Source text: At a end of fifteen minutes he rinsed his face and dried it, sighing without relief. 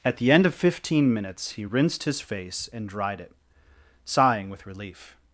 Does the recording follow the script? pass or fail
fail